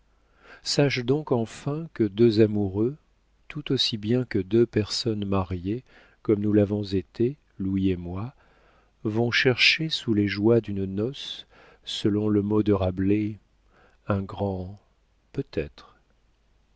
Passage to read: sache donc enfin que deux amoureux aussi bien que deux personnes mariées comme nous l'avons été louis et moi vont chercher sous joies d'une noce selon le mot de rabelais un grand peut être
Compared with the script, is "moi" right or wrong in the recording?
right